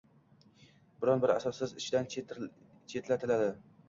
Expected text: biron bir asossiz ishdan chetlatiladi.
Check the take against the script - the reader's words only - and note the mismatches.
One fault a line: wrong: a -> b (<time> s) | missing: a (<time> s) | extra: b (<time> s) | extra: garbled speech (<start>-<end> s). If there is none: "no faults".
no faults